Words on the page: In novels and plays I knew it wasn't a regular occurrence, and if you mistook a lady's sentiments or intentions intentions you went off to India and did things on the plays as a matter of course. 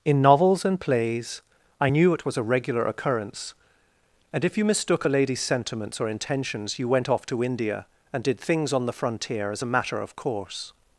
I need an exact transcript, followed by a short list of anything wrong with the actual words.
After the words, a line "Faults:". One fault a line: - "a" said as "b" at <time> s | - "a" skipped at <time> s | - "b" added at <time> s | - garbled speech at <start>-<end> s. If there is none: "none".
In novels and plays I knew it was a regular occurrence, and if you mistook a lady's sentiments or intentions you went off to India and did things on the frontier as a matter of course.
Faults:
- "wasn't" said as "was" at 2.2 s
- "intentions" skipped at 6.8 s
- "plays" said as "frontier" at 8.9 s